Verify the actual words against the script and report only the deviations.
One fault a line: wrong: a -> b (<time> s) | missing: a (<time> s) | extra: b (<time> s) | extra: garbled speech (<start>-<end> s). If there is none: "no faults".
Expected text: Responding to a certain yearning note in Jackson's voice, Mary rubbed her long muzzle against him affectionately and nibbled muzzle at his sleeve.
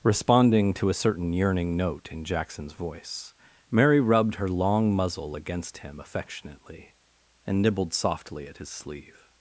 wrong: muzzle -> softly (7.9 s)